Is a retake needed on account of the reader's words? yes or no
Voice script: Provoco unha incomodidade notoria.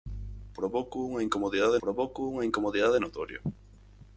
yes